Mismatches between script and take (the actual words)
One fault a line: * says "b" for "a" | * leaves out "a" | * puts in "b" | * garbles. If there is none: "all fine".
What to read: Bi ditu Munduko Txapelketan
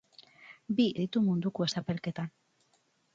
all fine